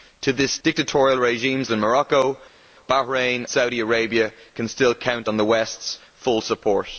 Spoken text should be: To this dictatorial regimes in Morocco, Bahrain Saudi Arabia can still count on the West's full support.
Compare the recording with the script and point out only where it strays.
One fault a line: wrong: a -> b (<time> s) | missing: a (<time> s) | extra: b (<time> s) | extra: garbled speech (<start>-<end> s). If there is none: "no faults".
no faults